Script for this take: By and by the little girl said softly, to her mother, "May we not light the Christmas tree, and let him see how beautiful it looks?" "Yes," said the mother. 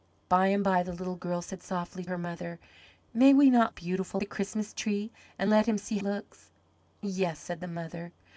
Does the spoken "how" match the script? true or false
false